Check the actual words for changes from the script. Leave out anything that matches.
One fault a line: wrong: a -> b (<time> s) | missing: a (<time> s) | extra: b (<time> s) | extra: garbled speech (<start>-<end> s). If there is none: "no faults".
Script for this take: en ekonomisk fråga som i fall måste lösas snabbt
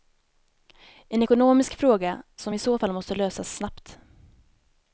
extra: så (2.6 s)